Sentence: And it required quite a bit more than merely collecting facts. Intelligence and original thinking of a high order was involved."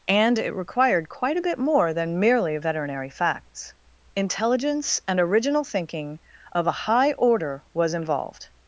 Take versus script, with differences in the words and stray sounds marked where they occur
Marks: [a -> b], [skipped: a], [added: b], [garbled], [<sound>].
And it required quite a bit more than merely [collecting -> veterinary] facts. Intelligence and original thinking of a high order was involved."